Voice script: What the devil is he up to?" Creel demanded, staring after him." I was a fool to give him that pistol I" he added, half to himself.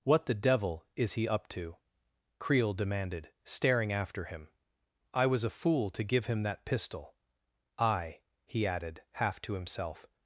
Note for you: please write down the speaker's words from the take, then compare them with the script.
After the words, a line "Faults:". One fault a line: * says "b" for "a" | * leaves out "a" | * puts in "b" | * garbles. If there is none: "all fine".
What the devil is he up to?" Creel demanded, staring after him." I was a fool to give him that pistol I" he added, half to himself.
Faults:
all fine